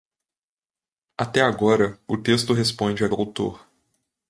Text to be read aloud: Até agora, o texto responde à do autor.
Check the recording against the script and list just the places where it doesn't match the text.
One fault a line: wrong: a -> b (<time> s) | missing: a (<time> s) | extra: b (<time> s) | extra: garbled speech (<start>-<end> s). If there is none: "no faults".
no faults